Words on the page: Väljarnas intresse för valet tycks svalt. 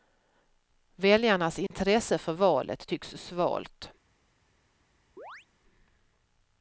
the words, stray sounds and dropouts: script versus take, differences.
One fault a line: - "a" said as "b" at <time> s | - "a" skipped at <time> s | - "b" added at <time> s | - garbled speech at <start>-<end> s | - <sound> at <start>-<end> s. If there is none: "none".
- dropout at 1.7-1.7 s
- chirp at 5.2-5.5 s